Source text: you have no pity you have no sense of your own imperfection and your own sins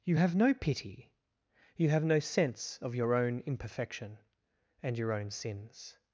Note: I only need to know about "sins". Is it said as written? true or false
true